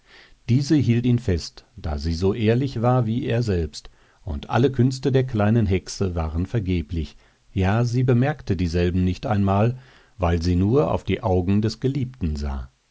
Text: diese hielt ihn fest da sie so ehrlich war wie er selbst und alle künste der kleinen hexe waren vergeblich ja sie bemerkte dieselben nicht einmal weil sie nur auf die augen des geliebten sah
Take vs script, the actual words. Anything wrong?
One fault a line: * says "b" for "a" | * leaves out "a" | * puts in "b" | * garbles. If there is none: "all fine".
all fine